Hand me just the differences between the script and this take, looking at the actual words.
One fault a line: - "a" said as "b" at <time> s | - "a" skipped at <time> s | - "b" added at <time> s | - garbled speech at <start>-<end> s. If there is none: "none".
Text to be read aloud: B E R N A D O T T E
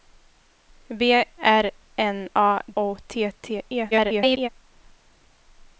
- "E" skipped at 1.2 s
- "D" skipped at 2.6 s
- garbled speech at 3.9-4.5 s